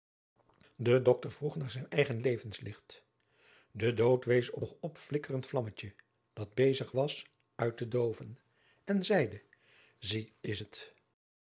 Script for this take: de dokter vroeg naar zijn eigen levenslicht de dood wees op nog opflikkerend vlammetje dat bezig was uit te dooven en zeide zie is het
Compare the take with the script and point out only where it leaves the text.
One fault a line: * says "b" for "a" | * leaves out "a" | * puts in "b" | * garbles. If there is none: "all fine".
all fine